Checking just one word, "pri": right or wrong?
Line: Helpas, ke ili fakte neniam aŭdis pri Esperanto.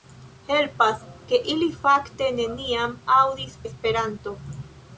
wrong